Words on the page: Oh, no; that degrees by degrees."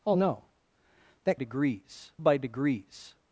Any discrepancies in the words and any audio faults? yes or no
no